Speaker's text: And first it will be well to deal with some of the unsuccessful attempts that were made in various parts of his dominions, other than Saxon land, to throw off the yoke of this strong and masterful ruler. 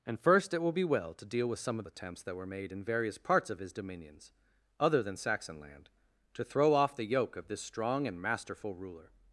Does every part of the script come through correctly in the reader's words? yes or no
no